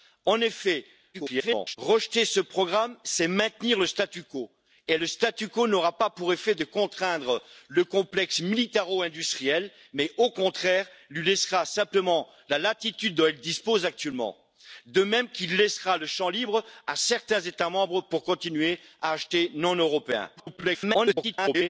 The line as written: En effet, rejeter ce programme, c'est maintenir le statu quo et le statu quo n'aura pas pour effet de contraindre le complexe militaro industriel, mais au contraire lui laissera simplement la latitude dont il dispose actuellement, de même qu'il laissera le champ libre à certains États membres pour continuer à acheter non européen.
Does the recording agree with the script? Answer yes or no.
no